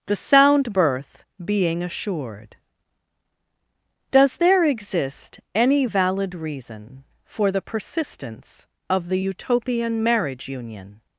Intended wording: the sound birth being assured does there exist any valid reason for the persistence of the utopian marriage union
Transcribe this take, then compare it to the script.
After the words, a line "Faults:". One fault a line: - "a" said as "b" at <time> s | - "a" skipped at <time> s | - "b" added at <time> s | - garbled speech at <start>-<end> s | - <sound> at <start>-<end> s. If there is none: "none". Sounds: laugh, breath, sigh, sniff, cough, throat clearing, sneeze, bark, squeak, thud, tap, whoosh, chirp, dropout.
the sound birth being assured does there exist any valid reason for the persistence of the utopian marriage union
Faults:
none